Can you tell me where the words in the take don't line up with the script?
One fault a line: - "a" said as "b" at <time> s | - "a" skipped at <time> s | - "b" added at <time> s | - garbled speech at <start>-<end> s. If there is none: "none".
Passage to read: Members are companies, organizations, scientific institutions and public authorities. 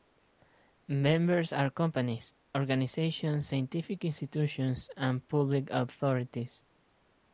none